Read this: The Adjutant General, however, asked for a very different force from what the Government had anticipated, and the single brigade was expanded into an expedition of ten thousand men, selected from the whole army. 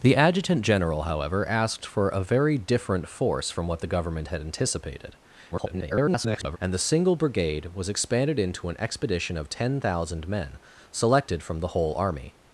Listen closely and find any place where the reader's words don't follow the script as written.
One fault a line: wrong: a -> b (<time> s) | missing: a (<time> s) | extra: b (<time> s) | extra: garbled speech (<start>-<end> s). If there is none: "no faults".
extra: garbled speech (5.5-6.6 s)